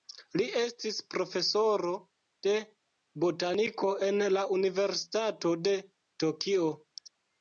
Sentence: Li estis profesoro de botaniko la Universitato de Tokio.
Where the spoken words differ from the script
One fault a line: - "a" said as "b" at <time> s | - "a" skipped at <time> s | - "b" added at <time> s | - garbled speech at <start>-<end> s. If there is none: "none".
- "en" added at 4.1 s